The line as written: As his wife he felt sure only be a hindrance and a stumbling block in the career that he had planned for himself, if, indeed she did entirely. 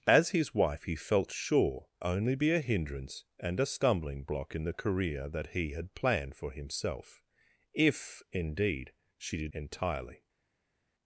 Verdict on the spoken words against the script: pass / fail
pass